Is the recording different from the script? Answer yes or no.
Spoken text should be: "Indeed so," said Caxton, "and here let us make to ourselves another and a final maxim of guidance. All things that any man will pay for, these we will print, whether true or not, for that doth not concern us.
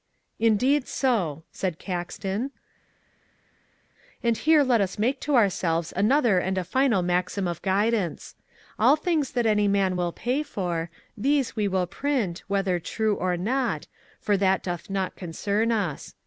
no